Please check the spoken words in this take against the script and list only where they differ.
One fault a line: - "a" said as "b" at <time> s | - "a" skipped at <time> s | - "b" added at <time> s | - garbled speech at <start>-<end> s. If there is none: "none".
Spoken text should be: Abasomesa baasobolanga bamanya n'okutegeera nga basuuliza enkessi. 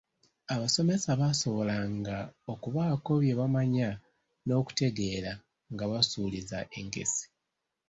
- "okubaako bye" added at 2.5 s